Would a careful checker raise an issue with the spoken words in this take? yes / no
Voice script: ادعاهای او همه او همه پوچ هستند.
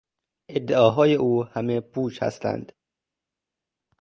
yes